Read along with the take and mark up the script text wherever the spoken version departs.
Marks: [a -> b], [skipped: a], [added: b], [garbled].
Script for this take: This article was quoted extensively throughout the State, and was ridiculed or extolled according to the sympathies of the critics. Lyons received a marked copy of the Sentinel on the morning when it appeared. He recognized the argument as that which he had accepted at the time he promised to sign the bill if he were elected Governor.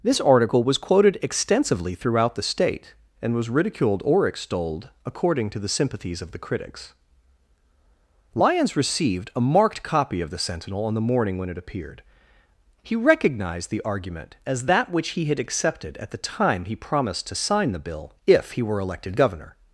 This article was quoted extensively throughout the State, and was ridiculed or extolled according to the sympathies of the critics. Lyons received a marked copy of the Sentinel on the morning when it appeared. He recognized the argument as that which he had accepted at the time he promised to sign the bill if he were elected Governor.